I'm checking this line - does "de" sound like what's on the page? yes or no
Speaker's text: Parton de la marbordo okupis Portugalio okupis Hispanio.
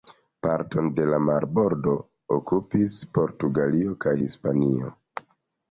yes